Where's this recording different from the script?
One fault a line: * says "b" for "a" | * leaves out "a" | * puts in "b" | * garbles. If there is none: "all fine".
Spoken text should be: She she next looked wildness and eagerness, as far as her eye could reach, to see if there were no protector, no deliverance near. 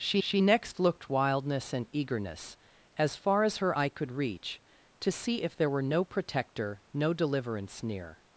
all fine